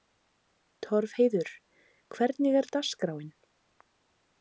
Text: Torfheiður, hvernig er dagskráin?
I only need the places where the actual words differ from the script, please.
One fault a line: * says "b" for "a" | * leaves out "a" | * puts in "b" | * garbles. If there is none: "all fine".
all fine